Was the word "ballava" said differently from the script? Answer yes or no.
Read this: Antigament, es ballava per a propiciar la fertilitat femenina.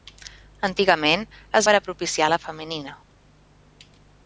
yes